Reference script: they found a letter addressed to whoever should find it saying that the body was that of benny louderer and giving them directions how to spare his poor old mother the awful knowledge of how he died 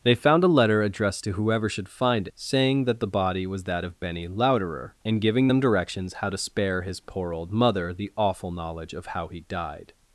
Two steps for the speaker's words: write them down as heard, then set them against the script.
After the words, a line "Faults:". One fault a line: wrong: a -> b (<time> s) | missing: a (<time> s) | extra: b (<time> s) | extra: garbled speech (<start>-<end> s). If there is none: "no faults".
they found a letter addressed to whoever should find saying that the body was that of benny louderer and giving them directions how to spare his poor old mother the awful knowledge of how he died
Faults:
missing: it (2.3 s)